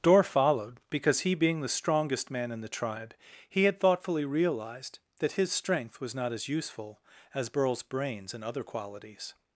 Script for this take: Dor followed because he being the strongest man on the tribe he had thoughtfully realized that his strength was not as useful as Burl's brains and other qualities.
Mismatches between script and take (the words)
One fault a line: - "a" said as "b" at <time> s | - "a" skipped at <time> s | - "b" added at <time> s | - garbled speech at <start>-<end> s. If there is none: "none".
- "on" said as "in" at 2.5 s